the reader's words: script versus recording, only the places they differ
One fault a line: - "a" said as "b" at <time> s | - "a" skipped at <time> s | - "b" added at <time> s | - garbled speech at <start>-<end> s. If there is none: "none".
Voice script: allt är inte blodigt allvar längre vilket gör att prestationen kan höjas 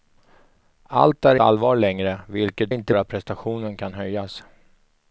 - "inte blodigt" skipped at 1.4 s
- "gör" said as "inte" at 2.7 s